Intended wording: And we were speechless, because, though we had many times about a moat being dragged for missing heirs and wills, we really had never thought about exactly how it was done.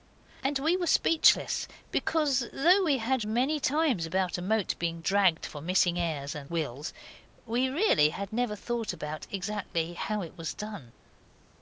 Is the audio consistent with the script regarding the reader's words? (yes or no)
yes